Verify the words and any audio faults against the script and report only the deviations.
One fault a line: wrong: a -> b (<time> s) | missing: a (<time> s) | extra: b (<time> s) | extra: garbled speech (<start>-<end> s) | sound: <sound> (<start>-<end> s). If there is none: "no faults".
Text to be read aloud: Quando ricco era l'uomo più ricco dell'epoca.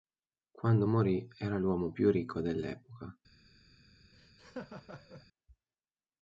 wrong: ricco -> morì (0.9 s)
sound: laugh (4.1-5.3 s)